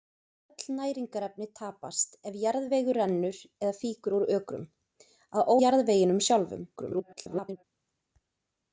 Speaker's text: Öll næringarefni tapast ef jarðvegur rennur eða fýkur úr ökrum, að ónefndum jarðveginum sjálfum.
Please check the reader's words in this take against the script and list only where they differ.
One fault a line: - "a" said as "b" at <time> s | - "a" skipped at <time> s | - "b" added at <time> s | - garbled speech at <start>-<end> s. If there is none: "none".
- "ónefndum" skipped at 5.5 s
- garbled speech at 6.8-7.6 s